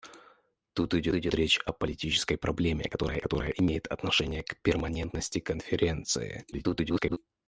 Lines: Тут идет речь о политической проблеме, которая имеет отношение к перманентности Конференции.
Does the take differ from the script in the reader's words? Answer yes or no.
yes